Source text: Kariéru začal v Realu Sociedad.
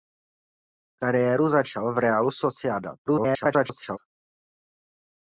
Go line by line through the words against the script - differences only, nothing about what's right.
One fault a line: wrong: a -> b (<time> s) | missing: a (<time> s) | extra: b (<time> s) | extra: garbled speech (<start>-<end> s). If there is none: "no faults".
extra: garbled speech (3.1-4.0 s)